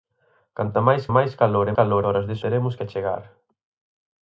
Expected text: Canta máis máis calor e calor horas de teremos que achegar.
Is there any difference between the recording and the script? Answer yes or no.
no